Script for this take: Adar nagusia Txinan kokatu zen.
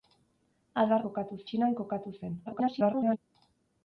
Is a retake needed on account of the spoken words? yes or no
yes